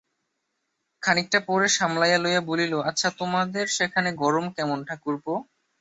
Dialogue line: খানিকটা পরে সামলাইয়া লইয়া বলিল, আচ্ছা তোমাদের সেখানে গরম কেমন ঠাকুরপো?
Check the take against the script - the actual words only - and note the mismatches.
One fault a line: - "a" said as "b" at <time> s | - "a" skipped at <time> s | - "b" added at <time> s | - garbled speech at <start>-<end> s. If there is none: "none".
none